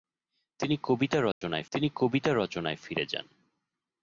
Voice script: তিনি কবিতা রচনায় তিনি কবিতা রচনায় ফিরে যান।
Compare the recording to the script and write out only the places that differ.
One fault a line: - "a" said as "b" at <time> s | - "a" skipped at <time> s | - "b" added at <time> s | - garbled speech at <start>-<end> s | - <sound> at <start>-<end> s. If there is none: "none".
- dropout at 1.3-1.4 s